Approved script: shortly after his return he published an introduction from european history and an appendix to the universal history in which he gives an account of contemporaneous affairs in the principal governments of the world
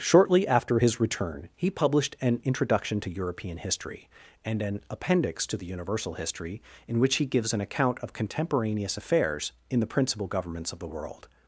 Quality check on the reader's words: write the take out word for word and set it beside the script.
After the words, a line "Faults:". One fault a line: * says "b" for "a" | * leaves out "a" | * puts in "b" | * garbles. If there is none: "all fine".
shortly after his return he published an introduction to european history and an appendix to the universal history in which he gives an account of contemporaneous affairs in the principal governments of the world
Faults:
* says "to" for "from"